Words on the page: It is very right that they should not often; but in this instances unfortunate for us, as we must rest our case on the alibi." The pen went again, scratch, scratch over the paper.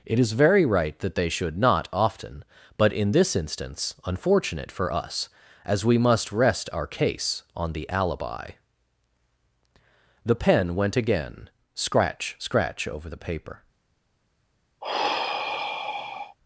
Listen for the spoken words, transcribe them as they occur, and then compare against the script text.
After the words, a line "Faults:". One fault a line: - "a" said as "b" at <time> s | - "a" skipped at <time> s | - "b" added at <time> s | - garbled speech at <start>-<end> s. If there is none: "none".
It is very right that they should not often; but in this instance unfortunate for us, as we must rest our case on the alibi." The pen went again, scratch, scratch over the paper.
Faults:
- "instances" said as "instance" at 3.4 s